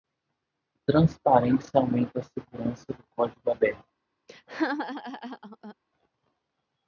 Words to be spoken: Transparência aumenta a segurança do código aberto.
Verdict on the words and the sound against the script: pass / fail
fail